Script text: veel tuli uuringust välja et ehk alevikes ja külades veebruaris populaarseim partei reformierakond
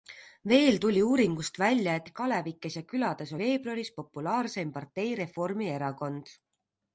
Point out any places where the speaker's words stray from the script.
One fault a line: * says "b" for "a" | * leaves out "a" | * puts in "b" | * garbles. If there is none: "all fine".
all fine